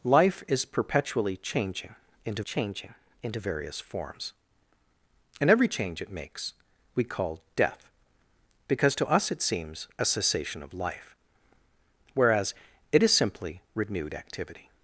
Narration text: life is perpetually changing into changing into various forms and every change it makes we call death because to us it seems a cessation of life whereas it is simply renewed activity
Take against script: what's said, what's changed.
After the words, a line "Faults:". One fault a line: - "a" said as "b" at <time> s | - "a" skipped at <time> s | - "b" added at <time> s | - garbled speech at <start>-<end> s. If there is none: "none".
life is perpetually changing into changing into various forms and every change it makes we call death because to us it seems a cessation of life whereas it is simply renewed activity
Faults:
none